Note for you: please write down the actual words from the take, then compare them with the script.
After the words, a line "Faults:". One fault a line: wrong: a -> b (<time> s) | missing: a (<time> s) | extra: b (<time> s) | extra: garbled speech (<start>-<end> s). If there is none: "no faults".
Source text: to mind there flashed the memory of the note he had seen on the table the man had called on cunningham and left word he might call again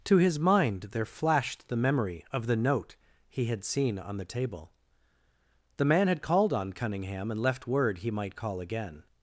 to his mind there flashed the memory of the note he had seen on the table the man had called on cunningham and left word he might call again
Faults:
extra: his (0.2 s)